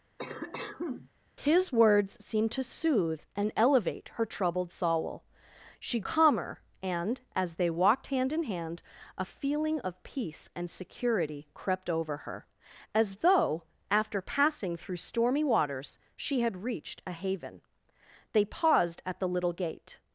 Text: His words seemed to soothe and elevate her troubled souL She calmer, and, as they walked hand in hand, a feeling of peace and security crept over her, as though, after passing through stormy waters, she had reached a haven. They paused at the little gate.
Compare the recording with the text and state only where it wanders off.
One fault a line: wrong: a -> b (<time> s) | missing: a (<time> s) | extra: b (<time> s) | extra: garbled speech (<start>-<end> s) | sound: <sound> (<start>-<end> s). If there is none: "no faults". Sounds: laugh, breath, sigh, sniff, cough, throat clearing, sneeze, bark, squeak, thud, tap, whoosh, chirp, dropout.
sound: cough (0.2-1.1 s)